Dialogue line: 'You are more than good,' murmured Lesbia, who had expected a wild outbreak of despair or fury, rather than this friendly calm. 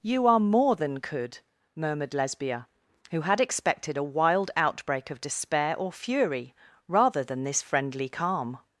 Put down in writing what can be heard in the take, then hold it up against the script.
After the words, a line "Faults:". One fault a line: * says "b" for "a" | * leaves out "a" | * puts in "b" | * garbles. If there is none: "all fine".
'You are more than could,' murmured Lesbia, who had expected a wild outbreak of despair or fury, rather than this friendly calm.
Faults:
* says "could" for "good"